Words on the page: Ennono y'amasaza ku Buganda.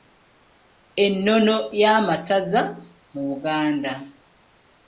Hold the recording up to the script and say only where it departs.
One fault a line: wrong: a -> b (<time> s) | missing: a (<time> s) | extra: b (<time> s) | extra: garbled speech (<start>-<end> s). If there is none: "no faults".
wrong: ku -> mu (3.1 s)